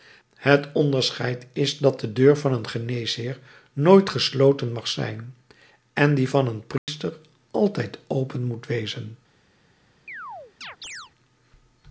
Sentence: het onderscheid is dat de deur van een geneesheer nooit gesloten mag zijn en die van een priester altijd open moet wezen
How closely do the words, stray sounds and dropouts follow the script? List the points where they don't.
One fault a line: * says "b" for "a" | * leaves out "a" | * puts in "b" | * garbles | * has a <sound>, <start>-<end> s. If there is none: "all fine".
* has a dropout, 6.8-6.9 s
* has a chirp, 10.1-11.1 s